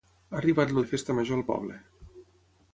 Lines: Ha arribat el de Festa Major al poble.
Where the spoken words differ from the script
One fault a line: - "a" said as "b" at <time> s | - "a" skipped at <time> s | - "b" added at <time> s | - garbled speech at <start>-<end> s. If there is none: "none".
none